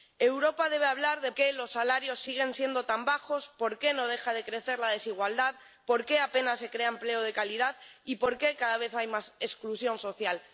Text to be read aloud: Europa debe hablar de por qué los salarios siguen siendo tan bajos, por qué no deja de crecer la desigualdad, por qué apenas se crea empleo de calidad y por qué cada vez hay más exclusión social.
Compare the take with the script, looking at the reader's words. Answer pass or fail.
fail